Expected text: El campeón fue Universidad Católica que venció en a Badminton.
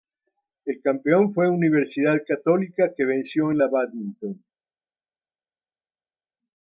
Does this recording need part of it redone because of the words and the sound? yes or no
no